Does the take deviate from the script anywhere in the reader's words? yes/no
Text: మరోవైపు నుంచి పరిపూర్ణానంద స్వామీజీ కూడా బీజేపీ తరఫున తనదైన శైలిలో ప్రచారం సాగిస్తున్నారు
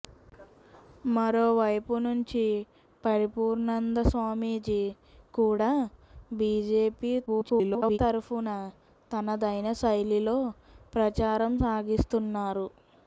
yes